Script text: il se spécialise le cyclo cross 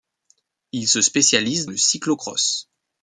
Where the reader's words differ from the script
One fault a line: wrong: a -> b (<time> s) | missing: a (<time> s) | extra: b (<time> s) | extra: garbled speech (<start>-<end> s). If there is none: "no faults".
no faults